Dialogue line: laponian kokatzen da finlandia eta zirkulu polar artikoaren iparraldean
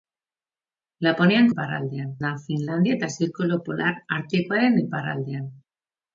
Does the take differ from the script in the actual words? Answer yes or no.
yes